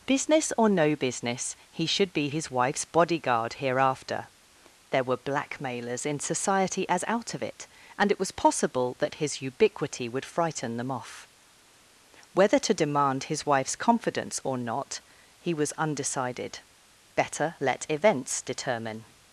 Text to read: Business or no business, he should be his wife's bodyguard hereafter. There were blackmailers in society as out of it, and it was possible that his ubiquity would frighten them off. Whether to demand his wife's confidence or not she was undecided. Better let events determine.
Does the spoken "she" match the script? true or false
false